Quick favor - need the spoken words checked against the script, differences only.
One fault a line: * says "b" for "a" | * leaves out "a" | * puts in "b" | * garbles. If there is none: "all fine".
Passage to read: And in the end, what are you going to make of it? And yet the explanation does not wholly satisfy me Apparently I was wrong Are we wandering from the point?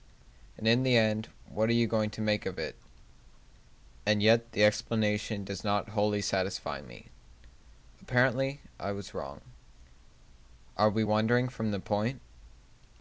all fine